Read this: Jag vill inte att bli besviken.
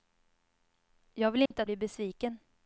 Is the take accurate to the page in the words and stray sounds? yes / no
no